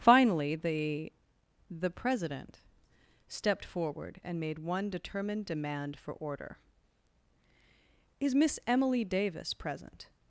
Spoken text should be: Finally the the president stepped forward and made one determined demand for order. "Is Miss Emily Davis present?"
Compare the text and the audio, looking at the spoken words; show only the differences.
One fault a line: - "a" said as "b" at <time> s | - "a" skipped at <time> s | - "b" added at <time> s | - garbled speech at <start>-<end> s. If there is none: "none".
none